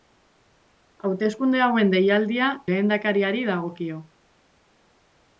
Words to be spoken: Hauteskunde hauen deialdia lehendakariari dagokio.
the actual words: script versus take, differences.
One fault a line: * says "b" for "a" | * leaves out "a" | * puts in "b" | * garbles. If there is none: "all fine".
all fine